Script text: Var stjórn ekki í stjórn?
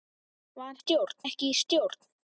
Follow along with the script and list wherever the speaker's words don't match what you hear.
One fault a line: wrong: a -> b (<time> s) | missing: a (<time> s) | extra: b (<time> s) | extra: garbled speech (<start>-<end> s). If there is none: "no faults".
no faults